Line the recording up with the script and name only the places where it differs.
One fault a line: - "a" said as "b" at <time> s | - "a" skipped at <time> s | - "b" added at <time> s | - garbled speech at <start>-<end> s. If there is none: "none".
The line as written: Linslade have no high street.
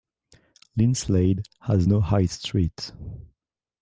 - "have" said as "has" at 1.6 s